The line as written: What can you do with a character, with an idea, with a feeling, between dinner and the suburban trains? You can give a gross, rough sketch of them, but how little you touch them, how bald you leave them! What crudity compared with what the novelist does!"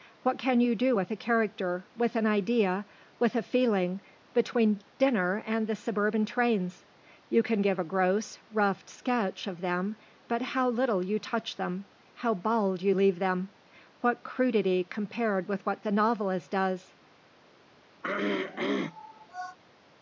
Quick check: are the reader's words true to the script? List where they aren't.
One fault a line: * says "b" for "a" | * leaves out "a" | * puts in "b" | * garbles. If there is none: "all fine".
all fine